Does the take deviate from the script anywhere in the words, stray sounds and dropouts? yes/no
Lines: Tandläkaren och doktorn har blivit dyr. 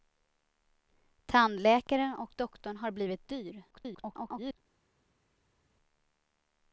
yes